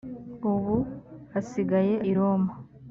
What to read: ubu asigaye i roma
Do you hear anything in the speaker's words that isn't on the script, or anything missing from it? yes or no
no